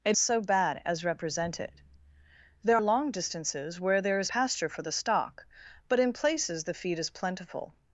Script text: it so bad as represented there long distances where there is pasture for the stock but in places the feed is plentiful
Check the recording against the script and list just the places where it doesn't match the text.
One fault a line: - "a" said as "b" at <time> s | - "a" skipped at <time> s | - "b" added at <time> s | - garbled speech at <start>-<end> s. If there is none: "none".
none